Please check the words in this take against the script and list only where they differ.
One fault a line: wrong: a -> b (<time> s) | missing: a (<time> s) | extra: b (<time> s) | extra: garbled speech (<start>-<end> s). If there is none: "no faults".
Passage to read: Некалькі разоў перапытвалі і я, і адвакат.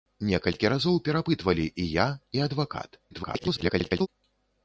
extra: garbled speech (3.1-4.1 s)